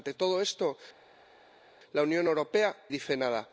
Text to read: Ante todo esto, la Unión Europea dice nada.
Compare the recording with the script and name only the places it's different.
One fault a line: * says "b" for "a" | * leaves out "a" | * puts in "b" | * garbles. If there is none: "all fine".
all fine